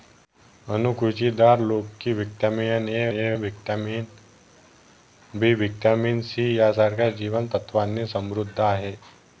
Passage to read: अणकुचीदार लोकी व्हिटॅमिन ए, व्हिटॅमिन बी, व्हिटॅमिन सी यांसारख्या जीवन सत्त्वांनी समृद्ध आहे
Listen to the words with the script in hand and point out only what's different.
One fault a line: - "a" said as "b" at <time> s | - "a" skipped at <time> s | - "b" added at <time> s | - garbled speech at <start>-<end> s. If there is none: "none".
- "ए" added at 3.1 s